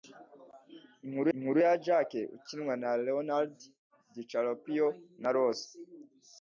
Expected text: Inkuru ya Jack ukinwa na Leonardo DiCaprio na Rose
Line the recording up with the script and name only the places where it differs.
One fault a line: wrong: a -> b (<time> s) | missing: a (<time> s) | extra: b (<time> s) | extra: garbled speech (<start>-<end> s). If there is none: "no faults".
extra: inkuru (1.3 s)